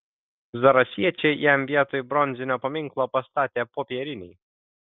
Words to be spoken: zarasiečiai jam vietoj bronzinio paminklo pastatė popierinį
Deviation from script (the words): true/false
false